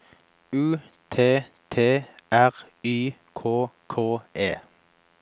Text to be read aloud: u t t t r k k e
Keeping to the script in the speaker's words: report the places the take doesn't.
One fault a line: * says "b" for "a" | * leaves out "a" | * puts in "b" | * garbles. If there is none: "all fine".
* says "r y" for "t r"